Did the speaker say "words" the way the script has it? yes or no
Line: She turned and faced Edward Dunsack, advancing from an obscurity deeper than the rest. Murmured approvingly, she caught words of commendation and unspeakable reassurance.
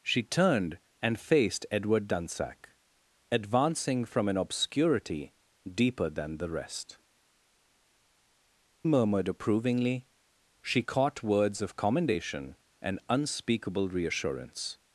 yes